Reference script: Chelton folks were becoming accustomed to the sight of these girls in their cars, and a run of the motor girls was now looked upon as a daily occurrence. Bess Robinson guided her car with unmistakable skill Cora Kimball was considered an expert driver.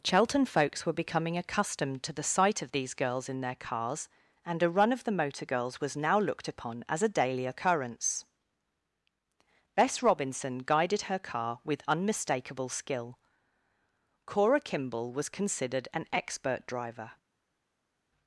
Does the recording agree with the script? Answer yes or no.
yes